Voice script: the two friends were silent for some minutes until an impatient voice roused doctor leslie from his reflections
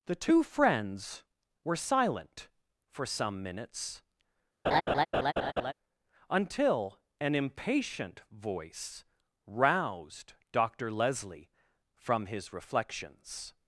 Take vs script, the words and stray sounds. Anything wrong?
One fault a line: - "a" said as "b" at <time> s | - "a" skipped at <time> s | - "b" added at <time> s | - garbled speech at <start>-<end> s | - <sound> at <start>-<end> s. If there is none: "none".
- laugh at 4.6-5.7 s